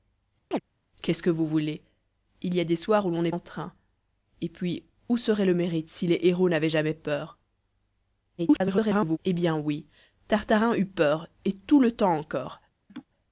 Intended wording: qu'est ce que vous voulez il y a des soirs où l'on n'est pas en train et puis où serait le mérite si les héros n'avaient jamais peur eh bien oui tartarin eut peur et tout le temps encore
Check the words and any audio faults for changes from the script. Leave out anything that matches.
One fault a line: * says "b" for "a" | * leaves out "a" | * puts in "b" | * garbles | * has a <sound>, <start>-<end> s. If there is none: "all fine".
* has a chirp, 0.5-0.6 s
* leaves out "pas"
* garbles
* has a laugh, 12.9-13.1 s